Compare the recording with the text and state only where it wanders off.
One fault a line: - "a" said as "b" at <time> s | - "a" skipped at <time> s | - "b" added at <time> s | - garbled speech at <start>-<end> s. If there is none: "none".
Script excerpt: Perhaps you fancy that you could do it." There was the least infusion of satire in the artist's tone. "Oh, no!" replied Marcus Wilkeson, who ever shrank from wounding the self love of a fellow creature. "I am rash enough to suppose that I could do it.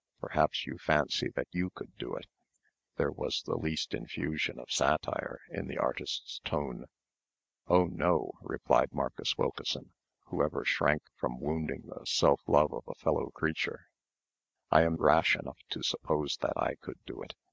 none